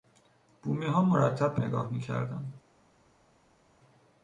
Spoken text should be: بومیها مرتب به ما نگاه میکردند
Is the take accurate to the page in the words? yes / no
no